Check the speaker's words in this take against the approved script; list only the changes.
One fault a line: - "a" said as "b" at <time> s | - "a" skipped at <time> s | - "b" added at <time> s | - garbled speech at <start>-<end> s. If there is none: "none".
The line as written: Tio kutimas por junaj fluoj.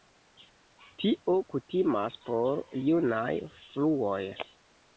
none